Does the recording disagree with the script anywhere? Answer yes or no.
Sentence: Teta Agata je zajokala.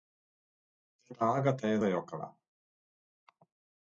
no